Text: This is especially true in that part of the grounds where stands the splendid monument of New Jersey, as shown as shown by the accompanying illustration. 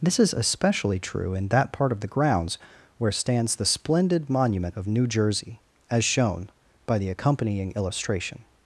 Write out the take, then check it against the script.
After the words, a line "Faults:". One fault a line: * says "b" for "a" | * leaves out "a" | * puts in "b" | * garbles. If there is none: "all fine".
This is especially true in that part of the grounds where stands the splendid monument of New Jersey, as shown by the accompanying illustration.
Faults:
* leaves out "as shown"